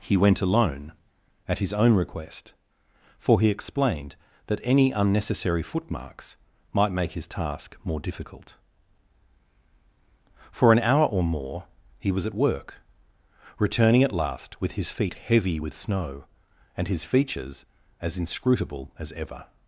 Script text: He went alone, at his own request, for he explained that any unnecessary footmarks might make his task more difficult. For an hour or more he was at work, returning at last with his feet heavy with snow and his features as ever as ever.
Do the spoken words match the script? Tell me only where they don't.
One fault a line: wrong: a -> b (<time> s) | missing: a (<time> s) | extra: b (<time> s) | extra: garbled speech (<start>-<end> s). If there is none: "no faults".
wrong: ever -> inscrutable (18.2 s)